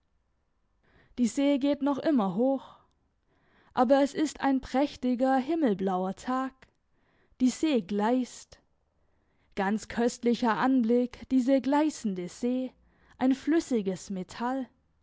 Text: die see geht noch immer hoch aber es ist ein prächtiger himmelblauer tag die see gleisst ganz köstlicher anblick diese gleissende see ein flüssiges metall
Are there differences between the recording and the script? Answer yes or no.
no